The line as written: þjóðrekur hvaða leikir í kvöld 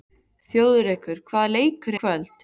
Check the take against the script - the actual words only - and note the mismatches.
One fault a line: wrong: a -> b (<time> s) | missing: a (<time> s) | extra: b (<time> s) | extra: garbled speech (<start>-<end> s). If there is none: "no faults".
no faults